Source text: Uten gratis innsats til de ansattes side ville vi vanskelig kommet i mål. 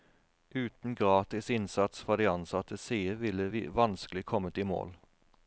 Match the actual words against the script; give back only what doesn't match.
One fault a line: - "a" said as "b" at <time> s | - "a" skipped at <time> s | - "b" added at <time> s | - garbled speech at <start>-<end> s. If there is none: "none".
- "til" said as "fra" at 2.0 s